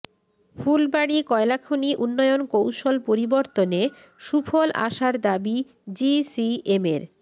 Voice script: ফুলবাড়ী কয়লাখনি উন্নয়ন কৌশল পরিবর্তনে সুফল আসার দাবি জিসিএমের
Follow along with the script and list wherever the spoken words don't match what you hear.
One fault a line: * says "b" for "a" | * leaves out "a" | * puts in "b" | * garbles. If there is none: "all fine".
all fine